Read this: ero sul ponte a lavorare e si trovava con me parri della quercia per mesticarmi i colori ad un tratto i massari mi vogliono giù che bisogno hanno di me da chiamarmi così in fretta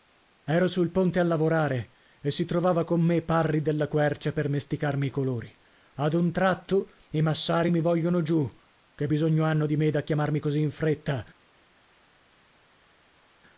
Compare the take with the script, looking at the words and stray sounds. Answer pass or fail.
pass